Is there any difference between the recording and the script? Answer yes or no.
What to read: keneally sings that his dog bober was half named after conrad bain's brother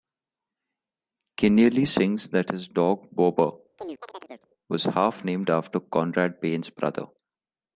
no